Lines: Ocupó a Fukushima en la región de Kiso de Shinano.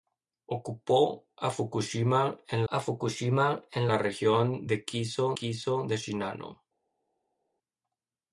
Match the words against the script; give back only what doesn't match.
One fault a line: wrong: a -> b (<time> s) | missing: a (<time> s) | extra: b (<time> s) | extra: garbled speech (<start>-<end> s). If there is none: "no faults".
extra: a Fukushima en (2.7 s)
extra: Kiso (5.3 s)